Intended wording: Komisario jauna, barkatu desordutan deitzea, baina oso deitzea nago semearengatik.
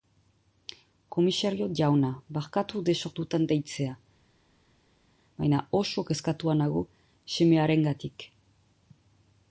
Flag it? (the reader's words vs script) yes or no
yes